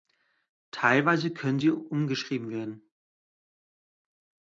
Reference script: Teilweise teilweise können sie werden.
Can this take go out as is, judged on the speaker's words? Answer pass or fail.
fail